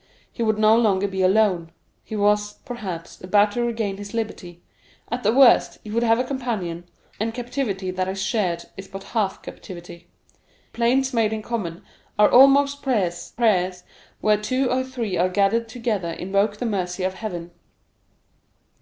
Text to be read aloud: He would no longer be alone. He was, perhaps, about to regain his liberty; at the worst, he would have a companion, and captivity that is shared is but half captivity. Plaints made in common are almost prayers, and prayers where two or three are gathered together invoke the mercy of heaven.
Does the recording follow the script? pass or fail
fail